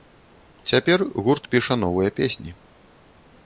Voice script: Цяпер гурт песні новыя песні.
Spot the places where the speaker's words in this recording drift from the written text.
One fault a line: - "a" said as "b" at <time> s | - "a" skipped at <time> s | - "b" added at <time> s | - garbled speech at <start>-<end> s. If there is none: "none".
- "песні" said as "піша" at 1.5 s